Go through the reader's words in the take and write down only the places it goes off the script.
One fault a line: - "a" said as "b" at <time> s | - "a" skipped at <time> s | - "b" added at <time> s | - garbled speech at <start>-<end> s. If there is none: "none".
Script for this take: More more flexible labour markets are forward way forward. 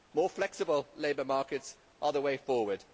- "more" skipped at 0.3 s
- "forward" said as "the" at 2.1 s